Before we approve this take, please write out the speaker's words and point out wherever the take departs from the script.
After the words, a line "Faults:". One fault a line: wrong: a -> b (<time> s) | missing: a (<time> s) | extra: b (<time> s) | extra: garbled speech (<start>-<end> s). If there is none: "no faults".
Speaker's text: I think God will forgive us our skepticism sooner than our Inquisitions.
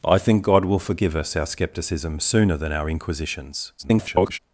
I think God will forgive us our skepticism sooner than our Inquisitions. [garbled]
Faults:
extra: garbled speech (3.8-4.4 s)